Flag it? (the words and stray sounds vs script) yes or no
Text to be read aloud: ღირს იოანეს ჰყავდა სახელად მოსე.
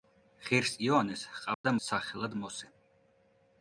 yes